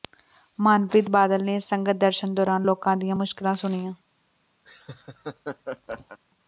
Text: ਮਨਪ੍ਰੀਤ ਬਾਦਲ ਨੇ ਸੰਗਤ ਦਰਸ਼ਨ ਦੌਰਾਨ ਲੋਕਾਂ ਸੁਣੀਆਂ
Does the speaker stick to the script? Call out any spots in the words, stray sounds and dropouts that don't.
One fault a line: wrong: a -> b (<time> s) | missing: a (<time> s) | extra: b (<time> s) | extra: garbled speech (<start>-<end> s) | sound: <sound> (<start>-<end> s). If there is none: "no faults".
extra: ਦੀਆਂ ਮੁਸ਼ਕਲਾਂ (3.0 s)
sound: laugh (4.6-6.2 s)